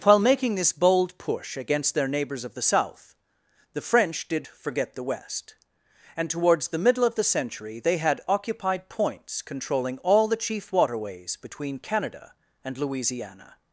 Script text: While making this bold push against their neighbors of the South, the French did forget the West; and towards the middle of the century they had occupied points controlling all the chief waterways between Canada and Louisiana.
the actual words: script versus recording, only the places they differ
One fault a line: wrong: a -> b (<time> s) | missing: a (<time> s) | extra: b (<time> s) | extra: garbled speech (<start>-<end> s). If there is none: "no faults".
no faults